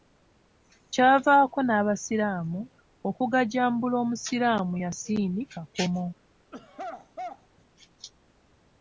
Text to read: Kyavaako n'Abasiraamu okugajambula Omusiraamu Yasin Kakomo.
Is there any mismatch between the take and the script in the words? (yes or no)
no